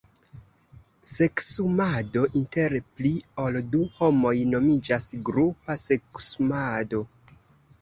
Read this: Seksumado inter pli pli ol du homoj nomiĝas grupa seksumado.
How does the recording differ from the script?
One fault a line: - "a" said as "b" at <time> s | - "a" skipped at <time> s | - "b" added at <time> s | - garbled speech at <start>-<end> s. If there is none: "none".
- "pli" skipped at 3.1 s